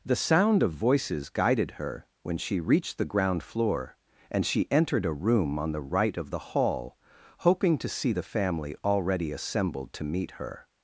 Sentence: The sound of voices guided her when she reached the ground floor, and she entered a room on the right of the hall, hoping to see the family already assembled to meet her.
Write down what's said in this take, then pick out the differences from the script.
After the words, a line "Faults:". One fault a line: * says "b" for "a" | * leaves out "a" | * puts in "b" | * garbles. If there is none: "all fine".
The sound of voices guided her when she reached the ground floor, and she entered a room on the right of the hall, hoping to see the family already assembled to meet her.
Faults:
all fine